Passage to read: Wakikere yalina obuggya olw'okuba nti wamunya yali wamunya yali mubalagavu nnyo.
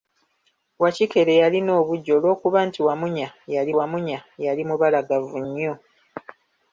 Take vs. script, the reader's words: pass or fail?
pass